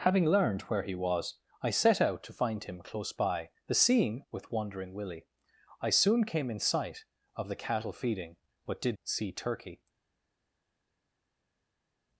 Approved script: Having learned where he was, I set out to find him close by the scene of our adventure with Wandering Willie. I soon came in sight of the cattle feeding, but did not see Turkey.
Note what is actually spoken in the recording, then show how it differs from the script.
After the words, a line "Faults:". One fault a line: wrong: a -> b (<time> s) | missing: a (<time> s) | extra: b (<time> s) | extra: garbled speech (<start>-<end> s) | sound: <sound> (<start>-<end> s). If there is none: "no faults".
Having learned where he was, I set out to find him close by the scene with Wandering Willie. I soon came in sight of the cattle feeding, but did see Turkey.
Faults:
missing: of our adventure (4.2 s)
missing: not (9.0 s)